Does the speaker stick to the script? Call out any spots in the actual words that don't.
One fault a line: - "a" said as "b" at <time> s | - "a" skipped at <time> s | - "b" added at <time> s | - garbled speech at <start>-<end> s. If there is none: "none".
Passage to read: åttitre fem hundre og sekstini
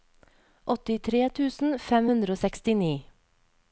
- "tusen" added at 1.4 s